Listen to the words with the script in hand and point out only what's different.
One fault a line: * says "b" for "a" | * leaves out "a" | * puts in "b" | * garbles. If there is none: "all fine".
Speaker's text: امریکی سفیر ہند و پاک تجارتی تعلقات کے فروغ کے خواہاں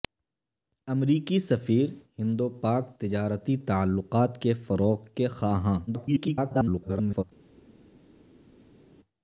* garbles